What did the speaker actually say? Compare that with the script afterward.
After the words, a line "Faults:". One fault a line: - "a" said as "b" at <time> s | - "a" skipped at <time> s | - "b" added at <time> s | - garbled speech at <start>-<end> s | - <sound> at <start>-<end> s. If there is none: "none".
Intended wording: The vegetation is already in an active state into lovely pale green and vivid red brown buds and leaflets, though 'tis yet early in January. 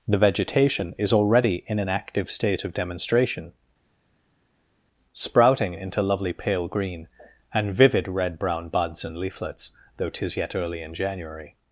The vegetation is already in an active state of demonstration, sprouting into lovely pale green and vivid red brown buds and leaflets, though 'tis yet early in January.
Faults:
- "of demonstration sprouting" added at 2.6 s